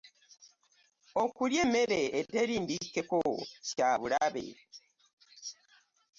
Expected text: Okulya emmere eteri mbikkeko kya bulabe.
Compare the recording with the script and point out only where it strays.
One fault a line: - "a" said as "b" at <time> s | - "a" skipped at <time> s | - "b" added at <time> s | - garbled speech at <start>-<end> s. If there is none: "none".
none